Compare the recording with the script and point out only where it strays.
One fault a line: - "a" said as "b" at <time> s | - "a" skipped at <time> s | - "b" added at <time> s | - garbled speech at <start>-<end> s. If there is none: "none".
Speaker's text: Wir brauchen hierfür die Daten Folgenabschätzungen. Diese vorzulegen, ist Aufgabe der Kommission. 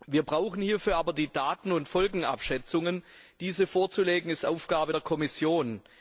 - "aber" added at 1.0 s
- "und" added at 1.7 s